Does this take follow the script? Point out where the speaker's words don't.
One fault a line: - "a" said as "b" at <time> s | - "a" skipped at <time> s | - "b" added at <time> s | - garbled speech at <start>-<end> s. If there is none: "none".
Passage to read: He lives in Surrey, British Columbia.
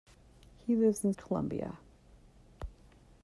- "Surrey British" skipped at 1.1 s